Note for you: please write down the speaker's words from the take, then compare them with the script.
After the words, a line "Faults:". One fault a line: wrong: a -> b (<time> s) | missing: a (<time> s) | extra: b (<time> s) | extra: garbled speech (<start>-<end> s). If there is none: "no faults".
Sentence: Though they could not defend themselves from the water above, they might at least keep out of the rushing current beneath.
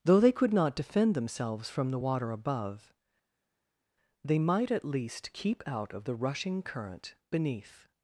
Though they could not defend themselves from the water above, they might at least keep out of the rushing current beneath.
Faults:
no faults